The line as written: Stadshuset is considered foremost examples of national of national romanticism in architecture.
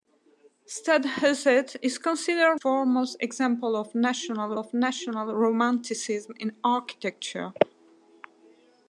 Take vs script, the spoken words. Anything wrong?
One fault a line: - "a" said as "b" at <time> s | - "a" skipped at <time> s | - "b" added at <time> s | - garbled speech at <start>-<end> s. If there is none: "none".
none